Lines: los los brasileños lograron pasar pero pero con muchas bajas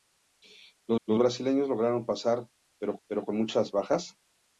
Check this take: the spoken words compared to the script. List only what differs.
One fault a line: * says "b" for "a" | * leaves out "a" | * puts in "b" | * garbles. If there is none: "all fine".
all fine